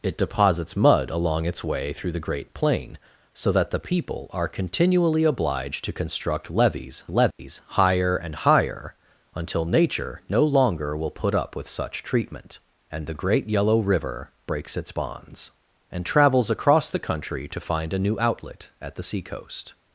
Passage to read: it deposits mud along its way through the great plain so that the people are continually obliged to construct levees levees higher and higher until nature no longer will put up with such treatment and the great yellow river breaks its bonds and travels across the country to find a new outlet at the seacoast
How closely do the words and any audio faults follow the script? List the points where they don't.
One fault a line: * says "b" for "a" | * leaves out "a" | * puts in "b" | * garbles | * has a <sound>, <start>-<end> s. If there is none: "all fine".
* has a dropout, 7.3-7.4 s